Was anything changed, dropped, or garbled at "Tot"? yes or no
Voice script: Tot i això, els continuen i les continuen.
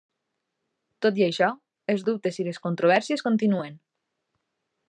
no